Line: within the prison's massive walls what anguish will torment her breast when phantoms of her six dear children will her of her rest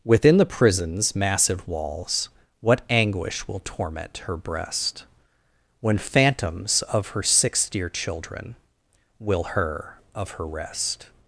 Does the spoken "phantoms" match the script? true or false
true